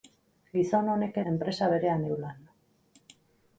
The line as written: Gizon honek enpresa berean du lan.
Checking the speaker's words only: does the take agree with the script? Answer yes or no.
yes